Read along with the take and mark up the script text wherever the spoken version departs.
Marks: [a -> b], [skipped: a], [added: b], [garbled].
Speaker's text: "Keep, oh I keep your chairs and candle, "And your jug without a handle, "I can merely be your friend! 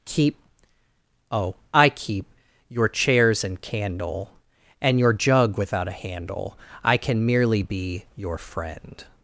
"Keep, oh I keep your chairs and candle, "And your jug without a handle, "I can merely be your friend!